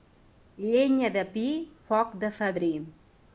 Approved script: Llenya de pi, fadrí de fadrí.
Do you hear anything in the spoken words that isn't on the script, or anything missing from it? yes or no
yes